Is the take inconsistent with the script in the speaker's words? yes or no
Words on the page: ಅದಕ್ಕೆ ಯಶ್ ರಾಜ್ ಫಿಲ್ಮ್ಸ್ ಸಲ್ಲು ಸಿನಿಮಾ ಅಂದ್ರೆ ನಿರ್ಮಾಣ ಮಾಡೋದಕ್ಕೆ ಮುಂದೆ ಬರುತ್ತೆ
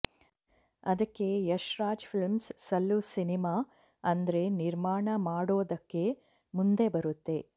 no